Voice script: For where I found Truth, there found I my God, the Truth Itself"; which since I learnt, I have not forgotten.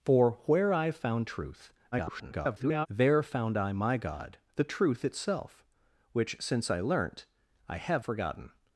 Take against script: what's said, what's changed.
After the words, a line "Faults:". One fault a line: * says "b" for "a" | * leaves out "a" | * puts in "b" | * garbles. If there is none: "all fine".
For where I found Truth, [garbled] there found I my God, the Truth Itself"; which since I learnt, I have forgotten.
Faults:
* garbles
* leaves out "not"